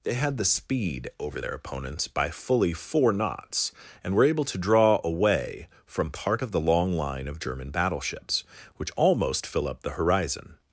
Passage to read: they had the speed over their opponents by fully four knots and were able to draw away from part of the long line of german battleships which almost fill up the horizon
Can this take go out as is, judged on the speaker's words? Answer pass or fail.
pass